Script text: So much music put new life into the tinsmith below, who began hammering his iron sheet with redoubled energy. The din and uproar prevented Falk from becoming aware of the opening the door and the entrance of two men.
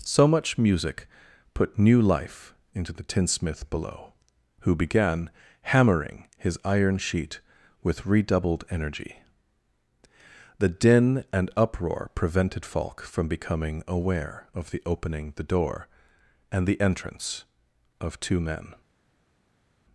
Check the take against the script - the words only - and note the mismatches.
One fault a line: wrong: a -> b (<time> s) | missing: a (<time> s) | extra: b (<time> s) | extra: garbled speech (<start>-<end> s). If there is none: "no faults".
no faults